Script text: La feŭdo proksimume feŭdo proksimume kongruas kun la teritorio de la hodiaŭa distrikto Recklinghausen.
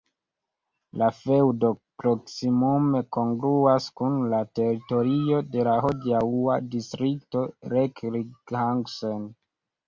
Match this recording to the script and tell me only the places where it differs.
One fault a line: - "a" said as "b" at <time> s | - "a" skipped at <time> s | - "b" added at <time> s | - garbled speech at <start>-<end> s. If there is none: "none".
- "feŭdo proksimume" skipped at 3.0 s